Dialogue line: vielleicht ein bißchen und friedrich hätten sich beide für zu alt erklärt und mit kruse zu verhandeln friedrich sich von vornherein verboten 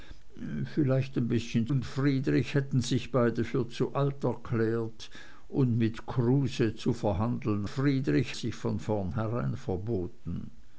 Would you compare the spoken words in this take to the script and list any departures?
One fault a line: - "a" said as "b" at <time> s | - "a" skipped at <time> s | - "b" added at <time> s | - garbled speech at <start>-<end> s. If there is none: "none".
none